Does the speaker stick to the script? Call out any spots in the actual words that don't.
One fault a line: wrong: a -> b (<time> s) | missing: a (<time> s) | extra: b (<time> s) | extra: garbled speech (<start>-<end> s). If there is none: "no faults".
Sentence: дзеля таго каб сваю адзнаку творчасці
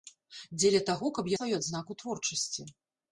no faults